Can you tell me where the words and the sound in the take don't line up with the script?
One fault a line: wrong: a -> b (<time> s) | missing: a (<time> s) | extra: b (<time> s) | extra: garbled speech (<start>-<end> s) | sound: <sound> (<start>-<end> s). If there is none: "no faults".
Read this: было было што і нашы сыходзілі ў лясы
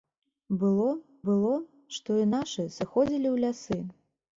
no faults